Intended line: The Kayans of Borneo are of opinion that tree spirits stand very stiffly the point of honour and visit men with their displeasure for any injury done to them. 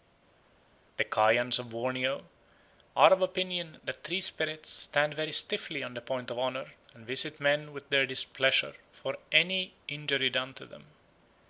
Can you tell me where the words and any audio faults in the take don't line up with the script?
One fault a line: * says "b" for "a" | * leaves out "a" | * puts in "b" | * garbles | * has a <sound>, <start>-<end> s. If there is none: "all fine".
* puts in "on"